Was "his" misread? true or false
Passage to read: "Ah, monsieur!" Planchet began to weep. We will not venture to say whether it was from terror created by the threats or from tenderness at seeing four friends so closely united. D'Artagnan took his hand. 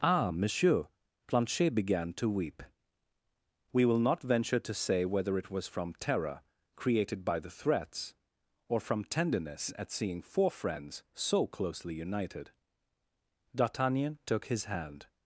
false